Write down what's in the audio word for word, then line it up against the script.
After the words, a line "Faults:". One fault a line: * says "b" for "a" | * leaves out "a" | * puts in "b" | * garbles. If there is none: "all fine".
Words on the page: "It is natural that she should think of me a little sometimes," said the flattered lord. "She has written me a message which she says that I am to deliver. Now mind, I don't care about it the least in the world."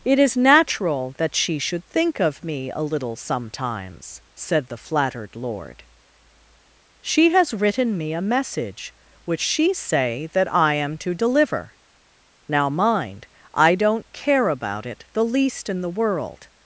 "It is natural that she should think of me a little sometimes," said the flattered lord. "She has written me a message which she say that I am to deliver. Now mind, I don't care about it the least in the world."
Faults:
* says "say" for "says"